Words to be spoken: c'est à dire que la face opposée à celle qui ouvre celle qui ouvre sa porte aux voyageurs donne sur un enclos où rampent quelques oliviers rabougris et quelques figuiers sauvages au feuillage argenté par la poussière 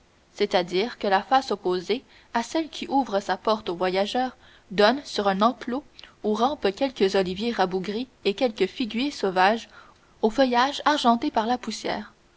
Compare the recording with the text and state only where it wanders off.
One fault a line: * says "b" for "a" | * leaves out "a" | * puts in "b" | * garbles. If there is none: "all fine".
* leaves out "celle qui ouvre"